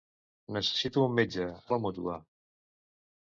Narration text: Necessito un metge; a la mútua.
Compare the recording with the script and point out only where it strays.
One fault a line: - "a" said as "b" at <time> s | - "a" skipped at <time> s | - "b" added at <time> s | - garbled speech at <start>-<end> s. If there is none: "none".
none